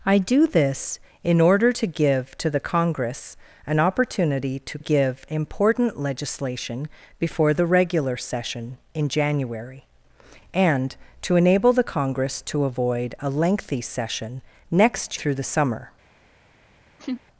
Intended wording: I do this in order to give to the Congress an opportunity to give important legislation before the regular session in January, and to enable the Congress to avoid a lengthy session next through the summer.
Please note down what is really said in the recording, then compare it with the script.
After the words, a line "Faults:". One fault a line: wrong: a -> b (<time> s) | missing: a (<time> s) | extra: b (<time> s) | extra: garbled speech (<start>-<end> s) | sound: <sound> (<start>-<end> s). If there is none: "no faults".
I do this in order to give to the Congress an opportunity to give important legislation before the regular session in January, and to enable the Congress to avoid a lengthy session next through the summer.
Faults:
sound: laugh (17.0-17.2 s)